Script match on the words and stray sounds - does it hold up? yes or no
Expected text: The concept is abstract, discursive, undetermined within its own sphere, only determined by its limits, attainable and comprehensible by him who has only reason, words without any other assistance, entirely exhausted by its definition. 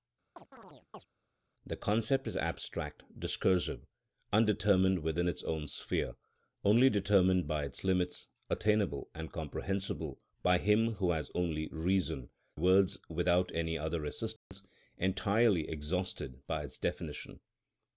no